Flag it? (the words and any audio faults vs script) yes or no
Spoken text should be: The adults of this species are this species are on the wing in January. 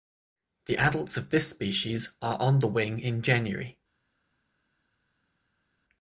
yes